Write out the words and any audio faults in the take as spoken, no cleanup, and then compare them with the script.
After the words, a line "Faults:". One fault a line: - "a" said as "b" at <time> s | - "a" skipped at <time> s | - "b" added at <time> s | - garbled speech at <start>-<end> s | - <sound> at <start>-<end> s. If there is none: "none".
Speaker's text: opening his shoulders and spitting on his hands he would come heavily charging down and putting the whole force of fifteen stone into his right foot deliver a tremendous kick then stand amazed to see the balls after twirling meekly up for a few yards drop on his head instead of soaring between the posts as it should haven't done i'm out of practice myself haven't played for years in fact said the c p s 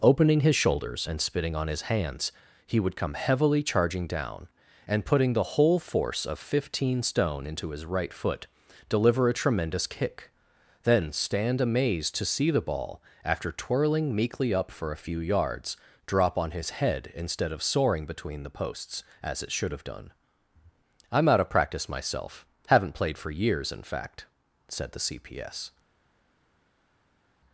opening his shoulders and spitting on his hands he would come heavily charging down and putting the whole force of fifteen stone into his right foot deliver a tremendous kick then stand amazed to see the ball after twirling meekly up for a few yards drop on his head instead of soaring between the posts as it should have done i'm out of practice myself haven't played for years in fact said the c p s
Faults:
- "balls" said as "ball" at 12.6 s
- "haven't" said as "have" at 19.7 s